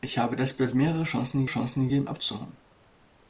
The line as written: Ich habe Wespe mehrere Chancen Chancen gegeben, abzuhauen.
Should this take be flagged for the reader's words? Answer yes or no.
no